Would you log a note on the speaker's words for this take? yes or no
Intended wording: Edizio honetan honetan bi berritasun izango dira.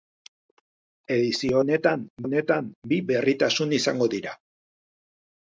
no